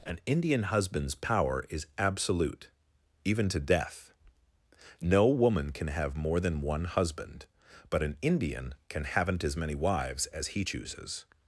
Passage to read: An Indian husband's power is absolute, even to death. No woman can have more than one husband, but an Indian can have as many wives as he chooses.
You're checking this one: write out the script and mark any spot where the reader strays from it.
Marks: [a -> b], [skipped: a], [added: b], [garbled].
An Indian husband's power is absolute, even to death. No woman can have more than one husband, but an Indian can [have -> haven't] as many wives as he chooses.